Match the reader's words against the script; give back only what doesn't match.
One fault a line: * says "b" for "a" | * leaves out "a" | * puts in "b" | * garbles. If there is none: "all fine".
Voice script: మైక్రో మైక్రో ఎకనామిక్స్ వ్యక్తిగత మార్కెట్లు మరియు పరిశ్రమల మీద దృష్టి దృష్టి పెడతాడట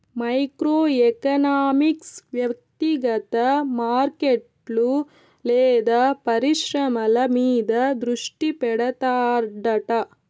* leaves out "మైక్రో"
* says "లేదా" for "మరియు"
* leaves out "దృష్టి"